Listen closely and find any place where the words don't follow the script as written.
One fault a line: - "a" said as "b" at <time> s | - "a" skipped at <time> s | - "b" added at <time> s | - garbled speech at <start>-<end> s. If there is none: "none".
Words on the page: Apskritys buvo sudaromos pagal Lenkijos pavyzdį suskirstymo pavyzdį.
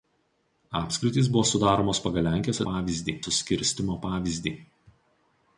none